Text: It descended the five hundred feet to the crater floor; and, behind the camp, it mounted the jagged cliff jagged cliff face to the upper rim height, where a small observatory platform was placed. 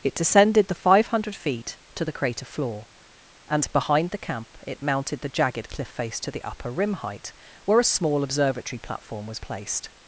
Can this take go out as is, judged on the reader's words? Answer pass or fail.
fail